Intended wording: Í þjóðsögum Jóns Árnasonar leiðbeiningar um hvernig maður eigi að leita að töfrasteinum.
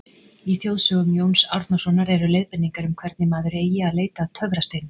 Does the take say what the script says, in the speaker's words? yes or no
no